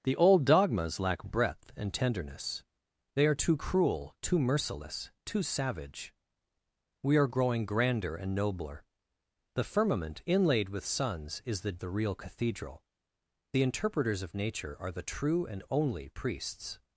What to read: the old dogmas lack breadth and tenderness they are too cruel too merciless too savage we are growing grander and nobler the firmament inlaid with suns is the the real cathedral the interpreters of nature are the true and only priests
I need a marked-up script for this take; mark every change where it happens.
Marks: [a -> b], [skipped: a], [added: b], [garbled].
the old dogmas lack breadth and tenderness they are too cruel too merciless too savage we are growing grander and nobler the firmament inlaid with suns is the the real cathedral the interpreters of nature are the true and only priests